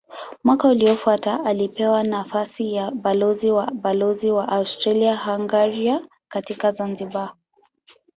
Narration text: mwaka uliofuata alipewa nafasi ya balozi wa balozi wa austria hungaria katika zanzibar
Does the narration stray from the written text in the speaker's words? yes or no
no